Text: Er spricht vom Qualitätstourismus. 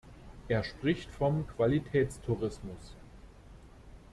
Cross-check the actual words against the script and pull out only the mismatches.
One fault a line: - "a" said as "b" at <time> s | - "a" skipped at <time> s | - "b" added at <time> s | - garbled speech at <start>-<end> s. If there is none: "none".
none